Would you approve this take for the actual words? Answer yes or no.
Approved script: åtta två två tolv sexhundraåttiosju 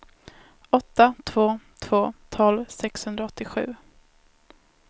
yes